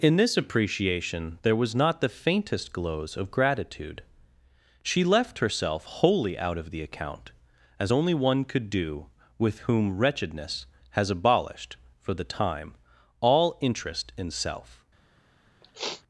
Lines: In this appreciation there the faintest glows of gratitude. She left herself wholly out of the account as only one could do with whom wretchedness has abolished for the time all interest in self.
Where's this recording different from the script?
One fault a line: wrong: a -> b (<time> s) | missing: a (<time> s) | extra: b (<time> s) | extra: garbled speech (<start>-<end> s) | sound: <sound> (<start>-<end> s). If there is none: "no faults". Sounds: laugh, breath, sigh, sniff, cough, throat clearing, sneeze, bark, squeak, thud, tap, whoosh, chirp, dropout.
extra: was not (1.6 s)
sound: sniff (15.6-16.0 s)